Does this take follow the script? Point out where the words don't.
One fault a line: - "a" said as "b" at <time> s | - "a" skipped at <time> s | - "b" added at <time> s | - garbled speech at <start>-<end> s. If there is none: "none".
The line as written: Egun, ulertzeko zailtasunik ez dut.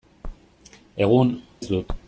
- "ulertzeko zailtasunik" skipped at 1.3 s